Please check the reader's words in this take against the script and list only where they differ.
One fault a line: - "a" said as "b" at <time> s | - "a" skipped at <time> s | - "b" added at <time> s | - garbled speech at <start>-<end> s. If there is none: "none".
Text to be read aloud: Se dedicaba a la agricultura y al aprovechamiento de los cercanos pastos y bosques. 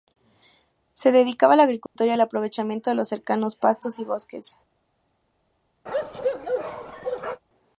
none